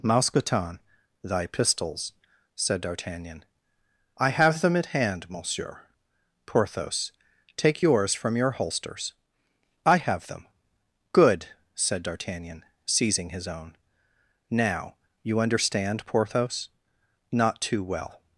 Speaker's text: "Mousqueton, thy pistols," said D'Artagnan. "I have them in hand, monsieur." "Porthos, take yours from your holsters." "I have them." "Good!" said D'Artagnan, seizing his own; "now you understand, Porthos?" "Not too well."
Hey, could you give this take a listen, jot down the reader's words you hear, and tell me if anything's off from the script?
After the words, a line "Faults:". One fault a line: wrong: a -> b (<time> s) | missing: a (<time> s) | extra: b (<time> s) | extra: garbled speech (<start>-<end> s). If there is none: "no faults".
"Mousqueton, thy pistols," said D'Artagnan. "I have them at hand, monsieur." "Porthos, take yours from your holsters." "I have them." "Good!" said D'Artagnan, seizing his own; "now you understand, Porthos?" "Not too well."
Faults:
wrong: in -> at (4.8 s)